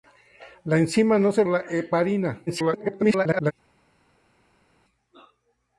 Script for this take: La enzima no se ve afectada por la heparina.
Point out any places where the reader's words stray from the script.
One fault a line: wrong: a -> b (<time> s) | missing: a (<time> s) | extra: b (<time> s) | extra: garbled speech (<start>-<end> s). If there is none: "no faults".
missing: ve afectada por (1.4 s)
extra: garbled speech (2.5-3.5 s)